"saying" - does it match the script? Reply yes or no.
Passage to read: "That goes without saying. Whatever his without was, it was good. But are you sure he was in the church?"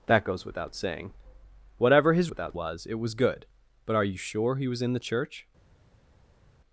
yes